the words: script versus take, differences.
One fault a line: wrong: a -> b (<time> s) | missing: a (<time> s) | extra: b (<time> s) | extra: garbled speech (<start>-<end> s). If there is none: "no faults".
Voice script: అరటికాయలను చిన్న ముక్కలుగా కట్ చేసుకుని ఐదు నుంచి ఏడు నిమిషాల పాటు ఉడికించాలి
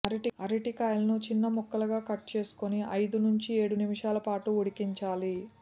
no faults